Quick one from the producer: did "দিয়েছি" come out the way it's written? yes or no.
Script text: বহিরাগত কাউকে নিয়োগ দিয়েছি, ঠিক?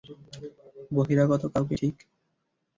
no